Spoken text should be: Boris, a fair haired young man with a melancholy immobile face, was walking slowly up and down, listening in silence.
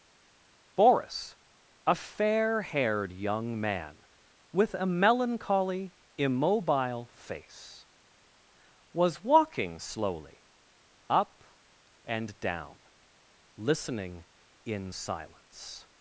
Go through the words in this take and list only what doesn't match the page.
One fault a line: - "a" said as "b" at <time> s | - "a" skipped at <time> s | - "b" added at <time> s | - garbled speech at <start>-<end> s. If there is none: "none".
none